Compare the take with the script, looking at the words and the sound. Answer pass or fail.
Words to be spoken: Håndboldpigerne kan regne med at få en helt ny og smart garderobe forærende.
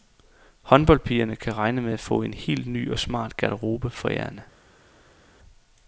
pass